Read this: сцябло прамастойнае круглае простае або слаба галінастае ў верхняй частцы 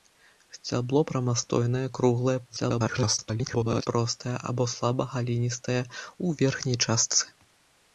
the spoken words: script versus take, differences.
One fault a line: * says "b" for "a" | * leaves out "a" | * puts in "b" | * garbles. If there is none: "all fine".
* garbles